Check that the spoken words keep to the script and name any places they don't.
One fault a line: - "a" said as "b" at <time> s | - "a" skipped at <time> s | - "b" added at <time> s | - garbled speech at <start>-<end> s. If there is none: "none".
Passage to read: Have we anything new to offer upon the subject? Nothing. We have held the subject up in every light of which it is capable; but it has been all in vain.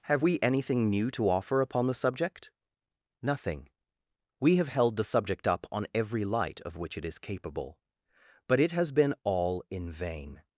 - "in" said as "on" at 5.7 s